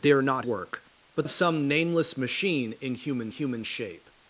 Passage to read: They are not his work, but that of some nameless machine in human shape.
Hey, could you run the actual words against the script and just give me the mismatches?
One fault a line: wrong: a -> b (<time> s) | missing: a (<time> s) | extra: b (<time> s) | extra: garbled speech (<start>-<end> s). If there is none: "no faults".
missing: his (0.5 s)
missing: that (1.3 s)
extra: human (3.3 s)